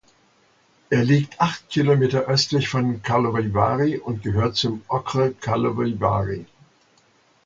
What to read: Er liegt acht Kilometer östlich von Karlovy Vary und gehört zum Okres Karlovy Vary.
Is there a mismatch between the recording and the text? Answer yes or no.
no